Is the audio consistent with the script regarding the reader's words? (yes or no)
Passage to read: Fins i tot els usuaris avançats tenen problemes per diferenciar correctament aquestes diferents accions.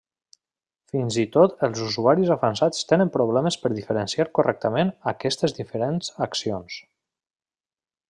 yes